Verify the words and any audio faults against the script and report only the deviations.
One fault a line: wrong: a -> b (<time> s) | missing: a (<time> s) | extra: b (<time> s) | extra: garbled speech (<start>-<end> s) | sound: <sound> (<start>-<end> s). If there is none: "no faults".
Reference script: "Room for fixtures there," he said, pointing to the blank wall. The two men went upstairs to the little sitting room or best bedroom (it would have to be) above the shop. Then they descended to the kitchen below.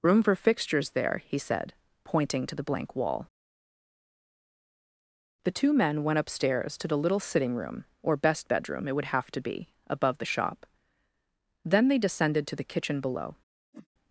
sound: whoosh (13.7-13.9 s)